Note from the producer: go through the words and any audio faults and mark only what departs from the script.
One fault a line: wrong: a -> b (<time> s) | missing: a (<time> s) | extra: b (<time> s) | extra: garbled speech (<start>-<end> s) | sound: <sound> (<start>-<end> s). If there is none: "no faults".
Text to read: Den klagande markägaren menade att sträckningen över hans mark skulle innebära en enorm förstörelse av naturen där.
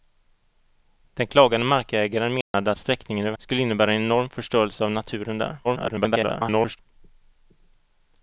sound: dropout (2.4-2.5 s)
missing: hans mark (3.4 s)
extra: garbled speech (5.6-6.8 s)